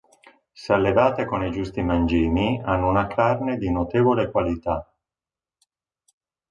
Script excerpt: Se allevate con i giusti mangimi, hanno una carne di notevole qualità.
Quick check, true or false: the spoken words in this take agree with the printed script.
true